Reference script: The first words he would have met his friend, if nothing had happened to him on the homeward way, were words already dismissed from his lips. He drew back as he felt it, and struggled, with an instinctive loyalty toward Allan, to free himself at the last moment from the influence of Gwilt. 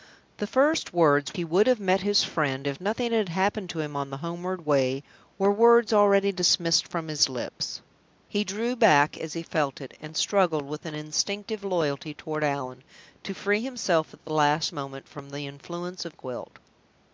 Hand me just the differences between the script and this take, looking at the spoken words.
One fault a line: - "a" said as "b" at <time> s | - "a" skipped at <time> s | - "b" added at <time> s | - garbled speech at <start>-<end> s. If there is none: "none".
none